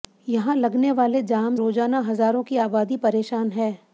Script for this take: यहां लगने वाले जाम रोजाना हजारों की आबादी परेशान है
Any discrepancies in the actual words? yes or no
no